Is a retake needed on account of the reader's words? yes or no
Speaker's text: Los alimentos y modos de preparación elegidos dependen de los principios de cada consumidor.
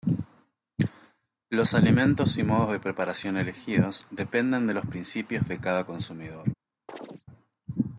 no